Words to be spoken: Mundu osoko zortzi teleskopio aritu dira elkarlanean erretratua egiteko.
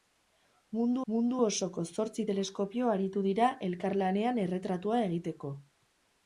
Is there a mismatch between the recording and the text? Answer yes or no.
yes